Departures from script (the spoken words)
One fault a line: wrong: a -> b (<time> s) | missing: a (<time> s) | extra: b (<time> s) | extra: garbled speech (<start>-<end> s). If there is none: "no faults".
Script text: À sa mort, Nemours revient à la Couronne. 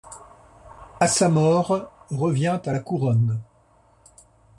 missing: Nemours (1.9 s)